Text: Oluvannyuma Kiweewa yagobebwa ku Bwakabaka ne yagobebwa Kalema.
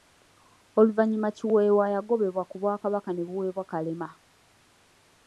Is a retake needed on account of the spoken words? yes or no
yes